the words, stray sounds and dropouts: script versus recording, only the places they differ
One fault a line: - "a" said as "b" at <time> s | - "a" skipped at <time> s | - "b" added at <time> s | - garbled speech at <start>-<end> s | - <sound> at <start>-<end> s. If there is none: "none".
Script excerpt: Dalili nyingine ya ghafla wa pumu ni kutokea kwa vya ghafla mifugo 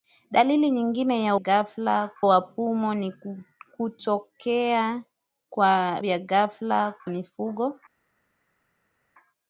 none